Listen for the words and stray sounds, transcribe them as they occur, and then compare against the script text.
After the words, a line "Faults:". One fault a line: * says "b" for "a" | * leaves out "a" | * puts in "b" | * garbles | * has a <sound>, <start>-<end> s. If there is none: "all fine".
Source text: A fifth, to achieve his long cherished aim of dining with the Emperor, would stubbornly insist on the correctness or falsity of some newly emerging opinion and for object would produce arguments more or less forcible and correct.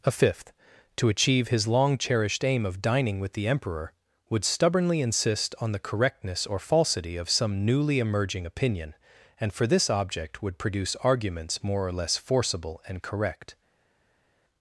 A fifth, to achieve his long cherished aim of dining with the Emperor, would stubbornly insist on the correctness or falsity of some newly emerging opinion and for this object would produce arguments more or less forcible and correct.
Faults:
* puts in "this"